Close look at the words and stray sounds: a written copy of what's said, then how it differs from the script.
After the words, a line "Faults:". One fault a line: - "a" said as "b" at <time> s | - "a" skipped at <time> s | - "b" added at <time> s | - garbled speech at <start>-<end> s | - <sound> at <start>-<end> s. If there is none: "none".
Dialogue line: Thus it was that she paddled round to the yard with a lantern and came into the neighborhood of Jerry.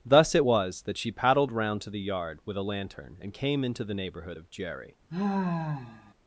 Thus it was that she paddled round to the yard with a lantern and came into the neighborhood of Jerry.
Faults:
- sigh at 5.1-6.1 s